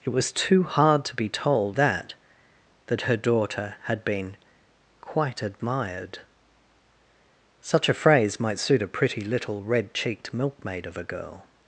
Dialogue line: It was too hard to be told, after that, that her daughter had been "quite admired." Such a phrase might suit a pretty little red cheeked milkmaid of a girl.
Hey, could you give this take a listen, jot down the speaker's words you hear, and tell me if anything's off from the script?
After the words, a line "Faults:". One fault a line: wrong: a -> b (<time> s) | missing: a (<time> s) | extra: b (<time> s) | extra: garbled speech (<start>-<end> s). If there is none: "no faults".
It was too hard to be told, that, that her daughter had been "quite admired." Such a phrase might suit a pretty little red cheeked milkmaid of a girl.
Faults:
missing: after (1.8 s)